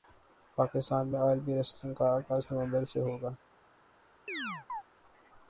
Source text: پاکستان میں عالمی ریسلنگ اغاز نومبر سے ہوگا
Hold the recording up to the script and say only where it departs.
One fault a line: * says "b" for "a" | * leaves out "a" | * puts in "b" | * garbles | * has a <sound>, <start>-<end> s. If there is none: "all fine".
* puts in "کا"
* has a chirp, 4.3-4.8 s